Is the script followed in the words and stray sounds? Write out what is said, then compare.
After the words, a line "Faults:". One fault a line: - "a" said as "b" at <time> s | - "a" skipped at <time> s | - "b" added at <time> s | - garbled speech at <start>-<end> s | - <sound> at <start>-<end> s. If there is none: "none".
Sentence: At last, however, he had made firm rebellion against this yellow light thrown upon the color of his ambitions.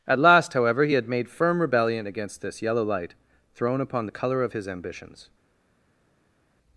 At last, however, he had made firm rebellion against this yellow light thrown upon the color of his ambitions.
Faults:
none